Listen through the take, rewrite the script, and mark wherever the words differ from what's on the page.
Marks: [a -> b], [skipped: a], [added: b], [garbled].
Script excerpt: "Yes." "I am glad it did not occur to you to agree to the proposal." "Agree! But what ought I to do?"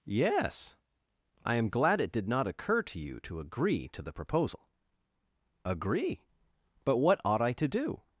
"Yes." "I am glad it did not occur to you to agree to the proposal." "Agree! But what ought I to do?"